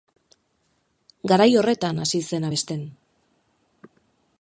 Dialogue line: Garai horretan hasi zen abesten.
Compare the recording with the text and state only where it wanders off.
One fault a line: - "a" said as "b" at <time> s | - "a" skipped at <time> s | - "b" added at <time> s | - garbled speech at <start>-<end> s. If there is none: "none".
none